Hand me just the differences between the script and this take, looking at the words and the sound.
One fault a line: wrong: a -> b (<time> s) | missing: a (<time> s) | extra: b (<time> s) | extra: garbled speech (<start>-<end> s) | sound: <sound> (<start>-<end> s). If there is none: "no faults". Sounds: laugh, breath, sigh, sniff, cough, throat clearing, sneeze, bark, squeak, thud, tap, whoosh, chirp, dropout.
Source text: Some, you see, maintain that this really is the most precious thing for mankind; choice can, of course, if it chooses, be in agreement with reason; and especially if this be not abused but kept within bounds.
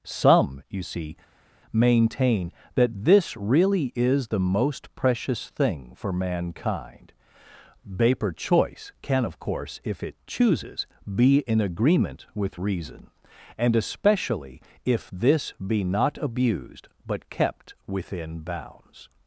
extra: vapor (7.8 s)